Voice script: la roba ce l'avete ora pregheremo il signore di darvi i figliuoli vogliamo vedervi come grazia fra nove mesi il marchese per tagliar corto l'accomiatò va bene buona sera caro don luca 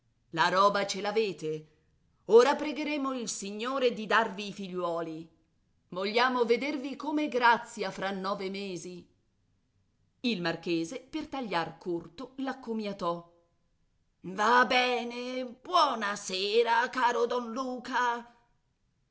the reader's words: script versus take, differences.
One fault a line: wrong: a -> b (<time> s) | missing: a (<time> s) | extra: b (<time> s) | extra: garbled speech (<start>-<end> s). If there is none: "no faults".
no faults